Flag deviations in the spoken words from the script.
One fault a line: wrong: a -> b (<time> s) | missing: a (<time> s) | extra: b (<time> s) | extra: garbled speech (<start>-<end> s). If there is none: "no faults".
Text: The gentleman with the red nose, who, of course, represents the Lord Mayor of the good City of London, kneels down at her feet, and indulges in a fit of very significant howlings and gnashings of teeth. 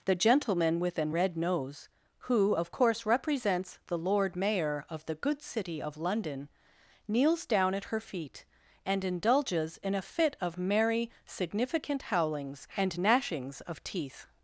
wrong: the -> an (1.0 s)
wrong: very -> merry (10.6 s)